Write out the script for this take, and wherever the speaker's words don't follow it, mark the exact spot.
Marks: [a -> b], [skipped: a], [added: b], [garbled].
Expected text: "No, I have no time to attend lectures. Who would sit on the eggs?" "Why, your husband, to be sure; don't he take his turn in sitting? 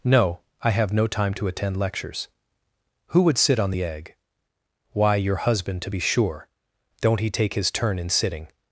"No, I have no time to attend lectures. Who would sit on the [eggs?" -> egg] "Why, your husband, to be sure; don't he take his turn in sitting?